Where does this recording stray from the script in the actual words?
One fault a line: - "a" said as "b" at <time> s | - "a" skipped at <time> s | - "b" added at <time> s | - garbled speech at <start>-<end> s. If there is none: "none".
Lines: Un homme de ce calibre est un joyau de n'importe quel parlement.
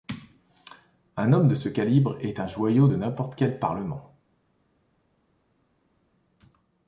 none